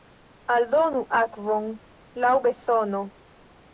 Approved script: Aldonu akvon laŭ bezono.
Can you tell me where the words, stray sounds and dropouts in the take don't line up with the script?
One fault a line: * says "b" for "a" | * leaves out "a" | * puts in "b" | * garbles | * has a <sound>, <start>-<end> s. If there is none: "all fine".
all fine